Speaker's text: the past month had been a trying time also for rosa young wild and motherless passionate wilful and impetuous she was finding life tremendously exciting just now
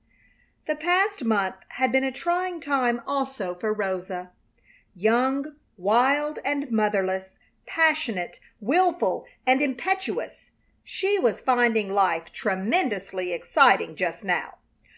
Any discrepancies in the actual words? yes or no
no